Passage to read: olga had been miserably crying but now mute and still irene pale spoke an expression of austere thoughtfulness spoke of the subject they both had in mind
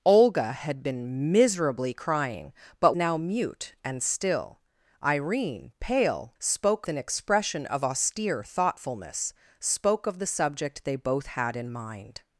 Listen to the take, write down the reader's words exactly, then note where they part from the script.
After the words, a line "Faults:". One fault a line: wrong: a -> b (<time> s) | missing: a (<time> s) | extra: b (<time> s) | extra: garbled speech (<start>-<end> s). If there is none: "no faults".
olga had been miserably crying but now mute and still irene pale spoke an expression of austere thoughtfulness spoke of the subject they both had in mind
Faults:
no faults